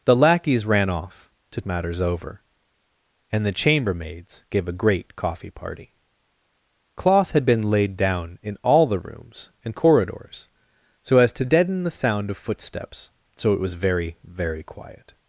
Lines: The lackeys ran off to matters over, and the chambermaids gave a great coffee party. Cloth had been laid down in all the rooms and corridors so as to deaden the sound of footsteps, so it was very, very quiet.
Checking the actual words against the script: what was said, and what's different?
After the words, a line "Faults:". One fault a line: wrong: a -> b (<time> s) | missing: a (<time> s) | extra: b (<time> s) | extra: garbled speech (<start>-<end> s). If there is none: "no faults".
The lackeys ran off to matters over, and the chambermaids gave a great coffee party. Cloth had been laid down in all the rooms and corridors so as to deaden the sound of footsteps, so it was very, very quiet.
Faults:
no faults